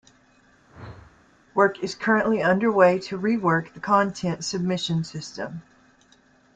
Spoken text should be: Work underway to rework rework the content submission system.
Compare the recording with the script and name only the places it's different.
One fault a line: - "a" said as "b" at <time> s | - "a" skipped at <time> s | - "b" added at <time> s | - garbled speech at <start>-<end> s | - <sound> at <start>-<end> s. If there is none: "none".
- whoosh at 0.6-1.3 s
- "is currently" added at 1.8 s
- "rework" skipped at 3.7 s